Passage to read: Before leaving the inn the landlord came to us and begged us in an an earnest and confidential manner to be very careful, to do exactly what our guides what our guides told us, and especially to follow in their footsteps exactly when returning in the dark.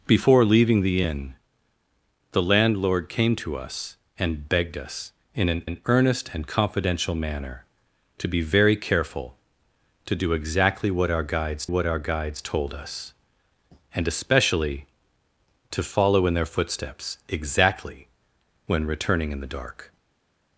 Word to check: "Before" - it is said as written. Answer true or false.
true